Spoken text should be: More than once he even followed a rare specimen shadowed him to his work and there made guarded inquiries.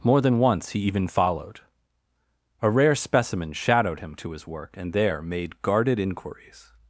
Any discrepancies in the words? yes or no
no